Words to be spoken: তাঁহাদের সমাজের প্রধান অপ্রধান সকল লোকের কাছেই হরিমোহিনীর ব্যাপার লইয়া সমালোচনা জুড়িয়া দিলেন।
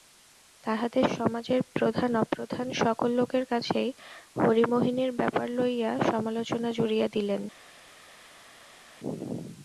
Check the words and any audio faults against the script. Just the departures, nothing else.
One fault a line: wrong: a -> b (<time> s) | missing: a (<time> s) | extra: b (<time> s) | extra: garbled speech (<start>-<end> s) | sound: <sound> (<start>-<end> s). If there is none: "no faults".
no faults